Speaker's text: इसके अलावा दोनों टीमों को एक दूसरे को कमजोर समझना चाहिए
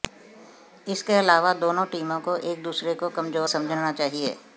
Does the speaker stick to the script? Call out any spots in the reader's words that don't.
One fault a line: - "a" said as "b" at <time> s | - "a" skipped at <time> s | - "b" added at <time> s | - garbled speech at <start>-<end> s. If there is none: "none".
none